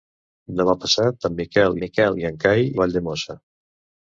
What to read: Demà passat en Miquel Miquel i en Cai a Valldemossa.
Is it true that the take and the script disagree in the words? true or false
false